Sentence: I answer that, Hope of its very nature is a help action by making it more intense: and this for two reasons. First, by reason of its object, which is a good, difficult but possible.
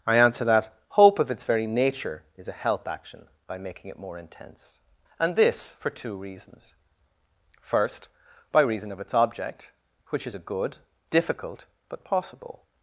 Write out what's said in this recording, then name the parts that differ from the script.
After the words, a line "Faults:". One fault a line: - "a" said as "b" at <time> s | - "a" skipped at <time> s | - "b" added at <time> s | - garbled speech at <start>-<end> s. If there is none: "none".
I answer that, Hope of its very nature is a help action by making it more intense: and this for two reasons. First, by reason of its object, which is a good, difficult but possible.
Faults:
none